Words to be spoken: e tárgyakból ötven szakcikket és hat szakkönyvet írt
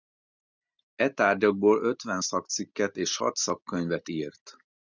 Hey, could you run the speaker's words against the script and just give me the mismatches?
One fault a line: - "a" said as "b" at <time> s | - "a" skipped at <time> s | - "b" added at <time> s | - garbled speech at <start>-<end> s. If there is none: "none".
none